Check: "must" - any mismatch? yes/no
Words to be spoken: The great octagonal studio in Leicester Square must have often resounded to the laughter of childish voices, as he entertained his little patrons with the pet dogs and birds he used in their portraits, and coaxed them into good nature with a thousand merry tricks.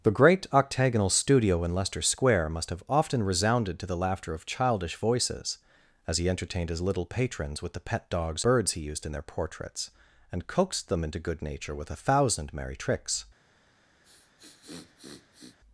no